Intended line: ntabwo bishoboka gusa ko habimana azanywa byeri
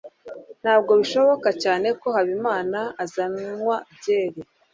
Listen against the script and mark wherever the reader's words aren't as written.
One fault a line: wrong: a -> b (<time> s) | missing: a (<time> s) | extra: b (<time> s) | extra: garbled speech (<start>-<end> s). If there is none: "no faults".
wrong: gusa -> cyane (1.6 s)